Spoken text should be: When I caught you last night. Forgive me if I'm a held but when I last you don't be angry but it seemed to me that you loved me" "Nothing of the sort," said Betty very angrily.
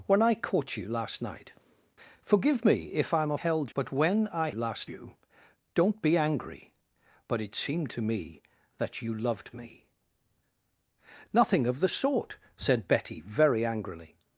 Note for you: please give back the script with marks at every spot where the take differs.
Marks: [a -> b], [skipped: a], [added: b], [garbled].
When I caught you last night. Forgive me if I'm a held but when I last you don't be angry but it seemed to me that you loved me" "Nothing of the sort," said Betty very angrily.